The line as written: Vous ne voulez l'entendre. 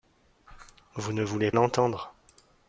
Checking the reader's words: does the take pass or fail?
pass